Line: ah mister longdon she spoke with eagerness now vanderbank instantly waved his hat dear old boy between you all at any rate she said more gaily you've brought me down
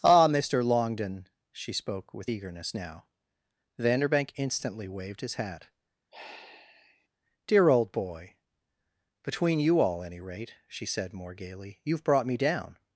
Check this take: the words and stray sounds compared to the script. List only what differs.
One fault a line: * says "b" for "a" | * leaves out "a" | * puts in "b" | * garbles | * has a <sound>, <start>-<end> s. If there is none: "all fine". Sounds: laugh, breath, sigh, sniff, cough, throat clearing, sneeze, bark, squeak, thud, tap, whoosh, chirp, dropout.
* has a sigh, 6.1-7.1 s
* leaves out "at"